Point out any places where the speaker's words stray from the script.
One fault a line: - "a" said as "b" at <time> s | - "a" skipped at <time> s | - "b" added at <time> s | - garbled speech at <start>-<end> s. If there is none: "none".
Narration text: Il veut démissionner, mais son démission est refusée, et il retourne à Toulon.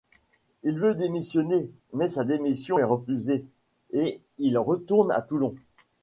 - "son" said as "sa" at 2.1 s